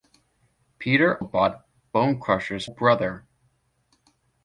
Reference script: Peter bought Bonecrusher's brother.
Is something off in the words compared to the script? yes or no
no